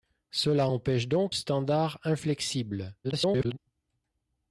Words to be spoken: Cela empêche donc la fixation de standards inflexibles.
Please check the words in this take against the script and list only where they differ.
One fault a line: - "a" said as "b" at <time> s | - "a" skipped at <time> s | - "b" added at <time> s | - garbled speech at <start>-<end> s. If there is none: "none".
- "la fixation de" skipped at 1.4 s
- garbled speech at 3.0-3.6 s